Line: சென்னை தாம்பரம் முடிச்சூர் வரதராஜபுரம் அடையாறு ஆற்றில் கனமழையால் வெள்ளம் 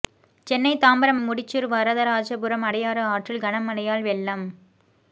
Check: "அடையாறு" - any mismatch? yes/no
no